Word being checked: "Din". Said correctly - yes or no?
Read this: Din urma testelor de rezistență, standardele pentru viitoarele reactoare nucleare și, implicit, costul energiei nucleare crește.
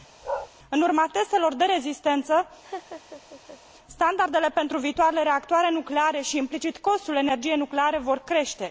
no